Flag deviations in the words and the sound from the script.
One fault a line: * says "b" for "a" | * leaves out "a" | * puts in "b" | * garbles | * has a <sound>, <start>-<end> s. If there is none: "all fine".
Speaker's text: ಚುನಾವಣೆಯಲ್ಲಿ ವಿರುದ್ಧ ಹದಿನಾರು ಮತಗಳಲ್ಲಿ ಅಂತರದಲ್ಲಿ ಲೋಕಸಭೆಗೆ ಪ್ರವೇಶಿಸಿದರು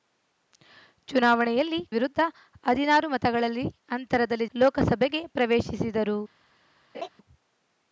* has a laugh, 6.9-7.1 s